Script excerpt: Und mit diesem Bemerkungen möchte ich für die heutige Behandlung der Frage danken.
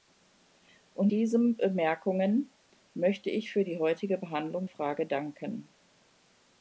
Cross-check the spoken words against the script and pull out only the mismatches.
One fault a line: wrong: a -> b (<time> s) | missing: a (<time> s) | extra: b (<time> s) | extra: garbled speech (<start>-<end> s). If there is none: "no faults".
missing: mit (1.1 s)
missing: der (4.7 s)